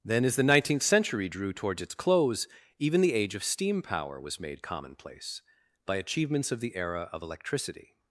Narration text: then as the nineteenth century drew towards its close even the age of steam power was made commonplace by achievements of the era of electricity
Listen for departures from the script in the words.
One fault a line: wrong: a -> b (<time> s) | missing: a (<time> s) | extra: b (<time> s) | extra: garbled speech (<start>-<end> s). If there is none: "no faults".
no faults